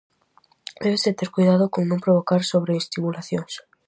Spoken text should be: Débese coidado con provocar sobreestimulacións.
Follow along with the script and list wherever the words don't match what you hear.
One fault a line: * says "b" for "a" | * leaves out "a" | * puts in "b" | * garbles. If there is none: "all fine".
* puts in "ter"
* puts in "non"